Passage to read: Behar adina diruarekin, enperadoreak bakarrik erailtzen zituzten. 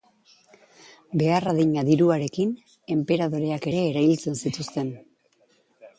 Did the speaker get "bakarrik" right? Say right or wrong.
wrong